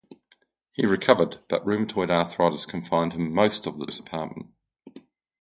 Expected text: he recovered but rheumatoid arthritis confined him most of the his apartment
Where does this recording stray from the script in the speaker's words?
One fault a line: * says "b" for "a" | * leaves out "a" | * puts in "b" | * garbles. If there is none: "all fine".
all fine